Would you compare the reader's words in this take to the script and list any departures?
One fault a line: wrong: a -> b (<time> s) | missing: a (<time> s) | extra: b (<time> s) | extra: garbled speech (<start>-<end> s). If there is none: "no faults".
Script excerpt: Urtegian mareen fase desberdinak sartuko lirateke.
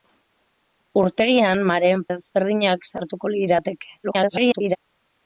missing: fase (2.0 s)
extra: garbled speech (4.0-4.8 s)